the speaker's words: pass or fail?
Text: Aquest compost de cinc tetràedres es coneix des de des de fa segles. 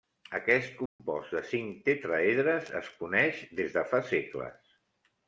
fail